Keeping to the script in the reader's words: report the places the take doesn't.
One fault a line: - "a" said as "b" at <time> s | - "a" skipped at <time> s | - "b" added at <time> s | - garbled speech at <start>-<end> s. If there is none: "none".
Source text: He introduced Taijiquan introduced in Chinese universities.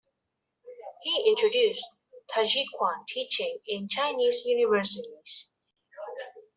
- "introduced" said as "teaching" at 3.1 s